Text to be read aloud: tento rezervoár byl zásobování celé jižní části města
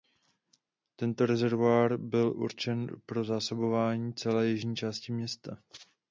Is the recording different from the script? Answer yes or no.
yes